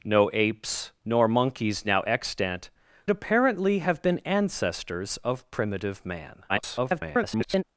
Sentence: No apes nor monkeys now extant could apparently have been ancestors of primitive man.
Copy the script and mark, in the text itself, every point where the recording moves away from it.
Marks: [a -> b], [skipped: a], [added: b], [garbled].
No apes nor monkeys now extant [skipped: could] apparently have been ancestors of primitive man. [garbled]